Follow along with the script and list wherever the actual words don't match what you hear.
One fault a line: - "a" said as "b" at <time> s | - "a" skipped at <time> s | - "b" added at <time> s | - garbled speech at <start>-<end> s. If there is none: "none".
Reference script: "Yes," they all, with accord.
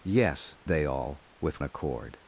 none